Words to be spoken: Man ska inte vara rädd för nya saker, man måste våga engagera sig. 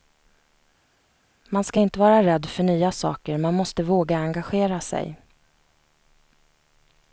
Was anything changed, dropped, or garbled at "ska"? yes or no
no